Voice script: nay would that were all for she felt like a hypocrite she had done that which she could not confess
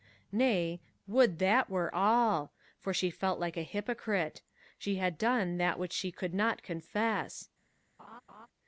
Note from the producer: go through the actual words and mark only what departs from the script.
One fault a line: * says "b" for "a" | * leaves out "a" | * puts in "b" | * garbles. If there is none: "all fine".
all fine